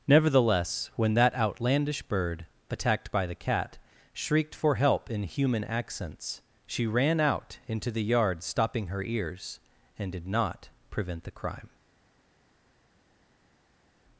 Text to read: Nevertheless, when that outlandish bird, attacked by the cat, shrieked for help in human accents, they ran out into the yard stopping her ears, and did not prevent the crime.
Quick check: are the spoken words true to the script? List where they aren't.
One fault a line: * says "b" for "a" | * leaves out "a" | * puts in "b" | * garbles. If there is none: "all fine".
* says "she" for "they"